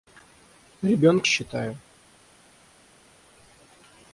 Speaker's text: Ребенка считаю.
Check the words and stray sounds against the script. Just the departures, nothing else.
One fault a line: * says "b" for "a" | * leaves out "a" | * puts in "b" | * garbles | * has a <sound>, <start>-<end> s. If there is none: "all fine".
all fine